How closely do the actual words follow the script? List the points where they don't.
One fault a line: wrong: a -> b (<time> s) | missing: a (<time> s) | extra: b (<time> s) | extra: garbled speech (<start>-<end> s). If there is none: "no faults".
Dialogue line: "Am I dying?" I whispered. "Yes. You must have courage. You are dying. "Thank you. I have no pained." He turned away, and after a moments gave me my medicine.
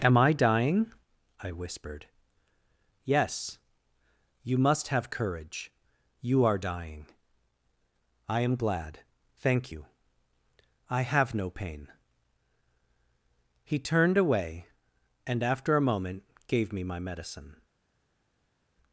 extra: I am glad (8.3 s)
wrong: pained -> pain (11.5 s)
wrong: moments -> moment (15.9 s)